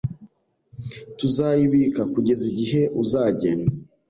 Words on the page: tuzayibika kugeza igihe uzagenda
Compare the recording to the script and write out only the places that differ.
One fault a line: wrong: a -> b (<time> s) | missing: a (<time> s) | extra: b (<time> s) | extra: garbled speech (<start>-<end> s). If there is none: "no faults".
no faults